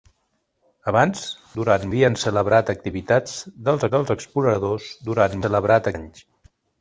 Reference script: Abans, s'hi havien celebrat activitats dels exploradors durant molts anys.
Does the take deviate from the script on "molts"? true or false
true